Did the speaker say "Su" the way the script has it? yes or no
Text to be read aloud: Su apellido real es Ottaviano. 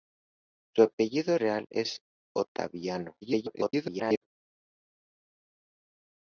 yes